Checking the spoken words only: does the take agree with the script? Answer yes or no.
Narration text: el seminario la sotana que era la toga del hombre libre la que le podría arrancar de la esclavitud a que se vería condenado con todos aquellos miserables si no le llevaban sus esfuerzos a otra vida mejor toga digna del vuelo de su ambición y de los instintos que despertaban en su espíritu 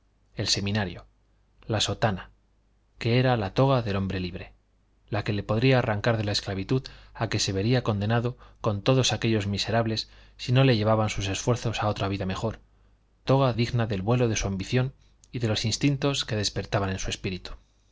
yes